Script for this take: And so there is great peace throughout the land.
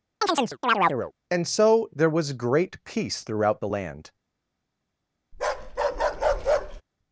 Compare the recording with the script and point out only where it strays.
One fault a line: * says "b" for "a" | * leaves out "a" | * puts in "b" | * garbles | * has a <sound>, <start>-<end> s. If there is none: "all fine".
* has a chirp, 0.2-1.1 s
* says "was" for "is"
* has a bark, 5.3-6.8 s